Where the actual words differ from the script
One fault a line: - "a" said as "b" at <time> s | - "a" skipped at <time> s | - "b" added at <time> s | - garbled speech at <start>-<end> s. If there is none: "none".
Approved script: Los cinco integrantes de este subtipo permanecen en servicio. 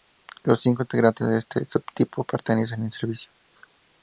none